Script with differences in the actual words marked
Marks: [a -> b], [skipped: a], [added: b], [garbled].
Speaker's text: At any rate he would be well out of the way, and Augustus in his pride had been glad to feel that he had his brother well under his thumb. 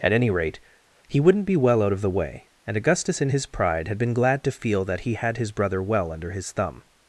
At any rate he [would -> wouldn't] be well out of the way, and Augustus in his pride had been glad to feel that he had his brother well under his thumb.